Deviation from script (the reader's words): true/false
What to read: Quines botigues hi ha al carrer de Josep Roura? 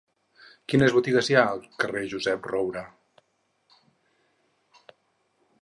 false